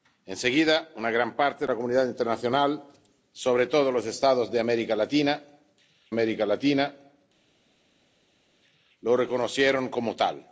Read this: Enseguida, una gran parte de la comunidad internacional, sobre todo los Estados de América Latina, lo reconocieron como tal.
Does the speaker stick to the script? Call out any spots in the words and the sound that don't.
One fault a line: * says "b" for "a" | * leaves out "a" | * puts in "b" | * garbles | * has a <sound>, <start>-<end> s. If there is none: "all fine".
* puts in "América Latina"